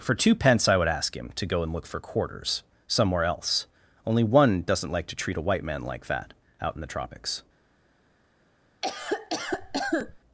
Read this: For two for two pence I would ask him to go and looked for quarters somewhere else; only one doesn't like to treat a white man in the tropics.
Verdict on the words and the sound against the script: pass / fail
fail